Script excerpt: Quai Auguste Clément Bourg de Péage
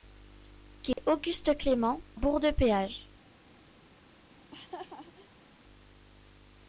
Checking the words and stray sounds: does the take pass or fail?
fail